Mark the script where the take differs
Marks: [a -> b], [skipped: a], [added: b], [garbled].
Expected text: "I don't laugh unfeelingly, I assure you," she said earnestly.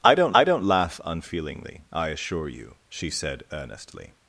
"I don't [added: I don't] laugh unfeelingly, I assure you," she said earnestly.